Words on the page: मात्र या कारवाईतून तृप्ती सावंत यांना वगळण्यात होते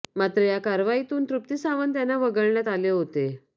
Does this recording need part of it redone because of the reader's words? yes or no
yes